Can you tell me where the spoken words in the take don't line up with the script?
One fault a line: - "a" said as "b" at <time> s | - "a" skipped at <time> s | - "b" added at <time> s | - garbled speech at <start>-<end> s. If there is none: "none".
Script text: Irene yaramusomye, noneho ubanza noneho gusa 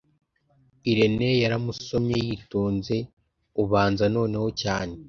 - "noneho" said as "yitonze" at 2.3 s
- "gusa" said as "cyane" at 4.6 s